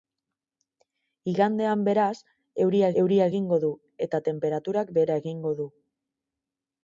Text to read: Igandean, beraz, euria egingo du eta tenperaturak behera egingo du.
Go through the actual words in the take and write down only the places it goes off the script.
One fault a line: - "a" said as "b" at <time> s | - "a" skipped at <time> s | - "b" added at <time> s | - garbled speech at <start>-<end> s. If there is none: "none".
- "euria" added at 3.0 s